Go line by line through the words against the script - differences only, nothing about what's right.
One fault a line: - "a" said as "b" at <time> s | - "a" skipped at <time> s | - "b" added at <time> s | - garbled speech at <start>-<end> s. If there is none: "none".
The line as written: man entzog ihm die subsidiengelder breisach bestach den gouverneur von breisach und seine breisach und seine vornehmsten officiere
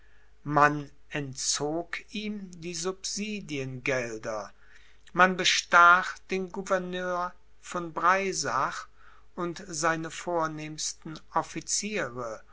- "breisach" said as "man" at 5.1 s
- "breisach und seine" skipped at 10.1 s